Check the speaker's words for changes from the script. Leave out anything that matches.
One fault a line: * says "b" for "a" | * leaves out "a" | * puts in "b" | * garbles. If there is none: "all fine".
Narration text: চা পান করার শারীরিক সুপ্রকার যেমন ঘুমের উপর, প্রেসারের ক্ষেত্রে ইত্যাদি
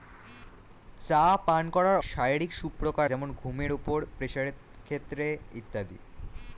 all fine